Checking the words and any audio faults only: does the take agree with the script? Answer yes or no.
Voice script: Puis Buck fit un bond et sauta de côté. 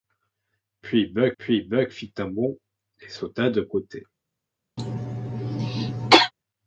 no